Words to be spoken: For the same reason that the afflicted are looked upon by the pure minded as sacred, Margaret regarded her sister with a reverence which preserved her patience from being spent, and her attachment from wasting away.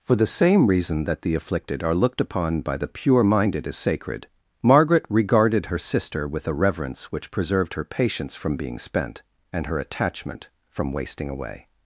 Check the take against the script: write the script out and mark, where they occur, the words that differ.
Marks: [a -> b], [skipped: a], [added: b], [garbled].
For the same reason that the afflicted are looked upon by the pure minded as sacred, Margaret regarded her sister with a reverence which preserved her patience from being spent, and her attachment from wasting away.